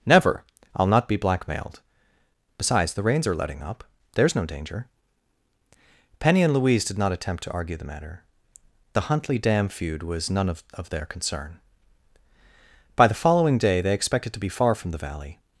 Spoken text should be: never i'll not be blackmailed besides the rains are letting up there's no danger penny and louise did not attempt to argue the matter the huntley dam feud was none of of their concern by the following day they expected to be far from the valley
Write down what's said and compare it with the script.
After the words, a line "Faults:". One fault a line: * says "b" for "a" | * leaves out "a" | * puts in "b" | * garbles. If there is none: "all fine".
never i'll not be blackmailed besides the rains are letting up there's no danger penny and louise did not attempt to argue the matter the huntley dam feud was none of of their concern by the following day they expected to be far from the valley
Faults:
all fine